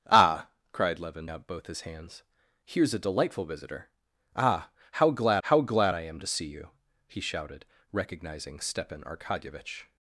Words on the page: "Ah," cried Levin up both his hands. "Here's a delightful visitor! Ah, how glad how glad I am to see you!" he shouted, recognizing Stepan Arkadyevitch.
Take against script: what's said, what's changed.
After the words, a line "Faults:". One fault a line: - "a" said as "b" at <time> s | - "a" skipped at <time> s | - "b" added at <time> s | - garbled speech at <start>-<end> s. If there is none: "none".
"Ah," cried Levin up both his hands. "Here's a delightful visitor! Ah, how glad how glad I am to see you!" he shouted, recognizing Stepan Arkadyevitch.
Faults:
none